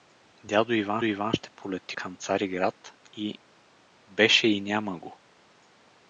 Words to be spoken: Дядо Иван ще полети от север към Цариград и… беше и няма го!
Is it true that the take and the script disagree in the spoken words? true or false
true